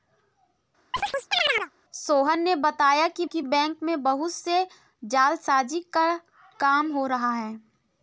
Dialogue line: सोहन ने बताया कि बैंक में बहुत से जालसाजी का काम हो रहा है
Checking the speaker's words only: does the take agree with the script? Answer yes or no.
no